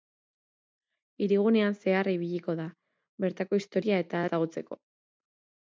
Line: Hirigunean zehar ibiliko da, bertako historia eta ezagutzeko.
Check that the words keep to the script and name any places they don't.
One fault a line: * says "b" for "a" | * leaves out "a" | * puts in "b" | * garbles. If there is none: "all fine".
all fine